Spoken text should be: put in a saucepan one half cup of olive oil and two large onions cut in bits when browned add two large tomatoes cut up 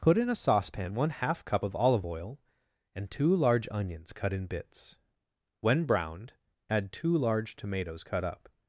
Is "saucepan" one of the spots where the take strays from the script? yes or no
no